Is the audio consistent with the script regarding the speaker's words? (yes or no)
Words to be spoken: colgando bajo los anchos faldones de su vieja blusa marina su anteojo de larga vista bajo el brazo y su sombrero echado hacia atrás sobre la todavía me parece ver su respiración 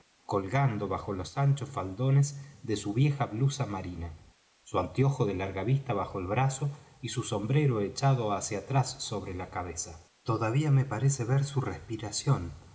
no